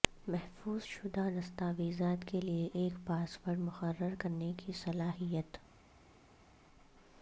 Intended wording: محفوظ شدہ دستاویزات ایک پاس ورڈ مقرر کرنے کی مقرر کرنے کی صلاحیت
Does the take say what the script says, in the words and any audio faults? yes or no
no